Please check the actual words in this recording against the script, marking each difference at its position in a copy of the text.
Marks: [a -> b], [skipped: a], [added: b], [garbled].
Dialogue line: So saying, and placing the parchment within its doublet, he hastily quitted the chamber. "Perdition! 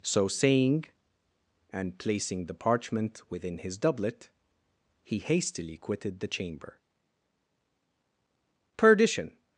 So saying, and placing the parchment within [its -> his] doublet, he hastily quitted the chamber. "Perdition!